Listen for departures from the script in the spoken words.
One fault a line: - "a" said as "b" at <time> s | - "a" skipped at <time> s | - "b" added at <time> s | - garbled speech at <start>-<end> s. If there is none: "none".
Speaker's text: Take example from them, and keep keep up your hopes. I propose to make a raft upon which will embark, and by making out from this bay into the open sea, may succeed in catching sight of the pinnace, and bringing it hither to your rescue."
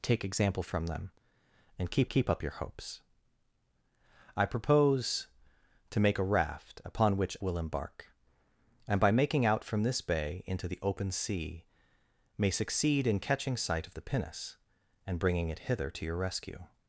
none